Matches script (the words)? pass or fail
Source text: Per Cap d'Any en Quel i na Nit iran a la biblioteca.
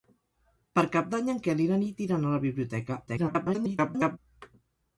fail